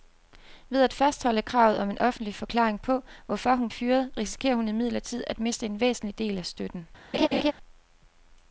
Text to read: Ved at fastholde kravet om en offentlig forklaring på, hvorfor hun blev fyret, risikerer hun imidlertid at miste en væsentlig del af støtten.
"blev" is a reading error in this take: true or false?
true